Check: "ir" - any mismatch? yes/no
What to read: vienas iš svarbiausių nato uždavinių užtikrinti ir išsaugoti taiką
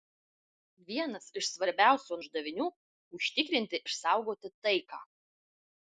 yes